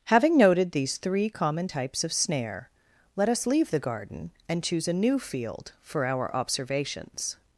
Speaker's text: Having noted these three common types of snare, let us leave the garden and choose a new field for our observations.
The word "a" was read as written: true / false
true